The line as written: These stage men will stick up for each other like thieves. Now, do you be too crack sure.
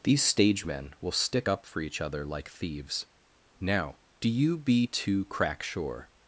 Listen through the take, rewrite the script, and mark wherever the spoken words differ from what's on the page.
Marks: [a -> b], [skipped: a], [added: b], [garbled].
These stage men will stick up for each other like thieves. Now, do you be too crack sure.